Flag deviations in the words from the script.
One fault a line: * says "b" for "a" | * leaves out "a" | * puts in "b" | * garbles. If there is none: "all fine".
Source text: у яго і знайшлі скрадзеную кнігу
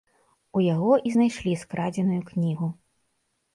all fine